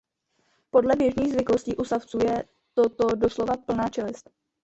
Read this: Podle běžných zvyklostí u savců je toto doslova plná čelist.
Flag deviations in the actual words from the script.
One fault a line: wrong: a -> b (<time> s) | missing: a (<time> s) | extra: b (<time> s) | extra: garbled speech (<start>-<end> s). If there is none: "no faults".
no faults